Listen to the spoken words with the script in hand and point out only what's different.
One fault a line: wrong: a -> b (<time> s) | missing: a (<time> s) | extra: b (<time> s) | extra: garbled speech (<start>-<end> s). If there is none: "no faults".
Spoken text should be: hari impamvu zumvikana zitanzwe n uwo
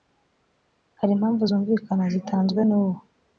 no faults